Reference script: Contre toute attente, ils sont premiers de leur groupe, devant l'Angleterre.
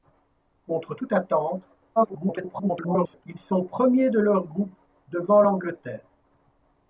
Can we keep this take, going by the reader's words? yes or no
no